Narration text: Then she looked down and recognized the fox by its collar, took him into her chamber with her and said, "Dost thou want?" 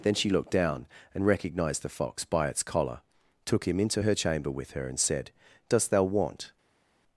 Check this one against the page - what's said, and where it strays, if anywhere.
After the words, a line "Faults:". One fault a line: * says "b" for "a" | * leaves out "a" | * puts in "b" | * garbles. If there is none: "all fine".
Then she looked down and recognized the fox by its collar, took him into her chamber with her and said, "Dost thou want?"
Faults:
all fine